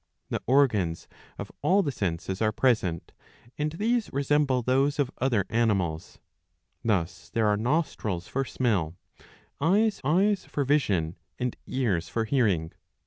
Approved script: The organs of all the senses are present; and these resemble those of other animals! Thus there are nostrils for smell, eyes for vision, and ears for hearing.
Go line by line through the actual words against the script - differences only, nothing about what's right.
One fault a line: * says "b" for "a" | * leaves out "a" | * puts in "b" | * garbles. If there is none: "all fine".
* puts in "eyes"